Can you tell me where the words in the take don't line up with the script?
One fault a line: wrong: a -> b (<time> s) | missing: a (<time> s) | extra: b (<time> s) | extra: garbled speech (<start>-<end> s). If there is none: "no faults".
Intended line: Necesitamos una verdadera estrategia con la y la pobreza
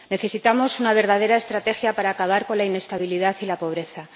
extra: para acabar (1.9 s)
extra: inestabilidad (2.6 s)